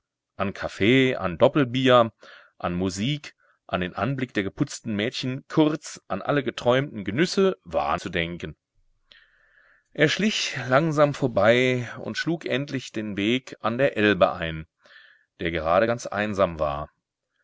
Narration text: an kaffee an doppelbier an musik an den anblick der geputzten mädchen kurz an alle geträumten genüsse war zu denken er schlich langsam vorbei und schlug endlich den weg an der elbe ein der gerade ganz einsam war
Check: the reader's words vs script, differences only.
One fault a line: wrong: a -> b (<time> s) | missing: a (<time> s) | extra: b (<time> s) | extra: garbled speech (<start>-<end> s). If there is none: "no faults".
no faults